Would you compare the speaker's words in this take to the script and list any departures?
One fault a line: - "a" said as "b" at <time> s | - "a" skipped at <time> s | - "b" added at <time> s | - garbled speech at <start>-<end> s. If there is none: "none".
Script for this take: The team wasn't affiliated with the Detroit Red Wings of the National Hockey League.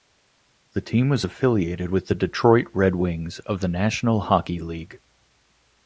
- "wasn't" said as "was" at 1.1 s